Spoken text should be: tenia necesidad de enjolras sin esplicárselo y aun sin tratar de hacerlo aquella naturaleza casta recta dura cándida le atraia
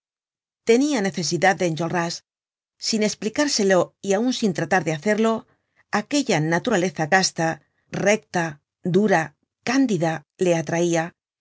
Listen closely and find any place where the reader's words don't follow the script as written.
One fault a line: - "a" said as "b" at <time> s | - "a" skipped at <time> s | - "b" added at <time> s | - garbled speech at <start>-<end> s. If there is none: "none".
none